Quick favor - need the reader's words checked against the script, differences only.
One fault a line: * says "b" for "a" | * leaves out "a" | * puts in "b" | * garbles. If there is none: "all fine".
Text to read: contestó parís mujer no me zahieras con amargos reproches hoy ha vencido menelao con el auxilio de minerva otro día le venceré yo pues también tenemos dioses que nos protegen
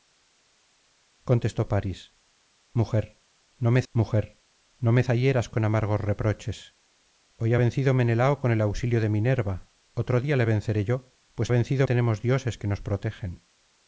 * puts in "mujer no me"
* says "vencido" for "también"